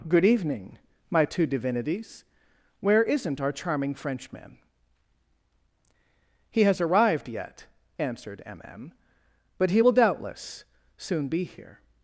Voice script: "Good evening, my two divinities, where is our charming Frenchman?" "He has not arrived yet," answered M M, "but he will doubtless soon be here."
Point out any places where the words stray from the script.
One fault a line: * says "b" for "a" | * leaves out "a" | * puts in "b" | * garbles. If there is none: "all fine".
* says "isn't" for "is"
* leaves out "not"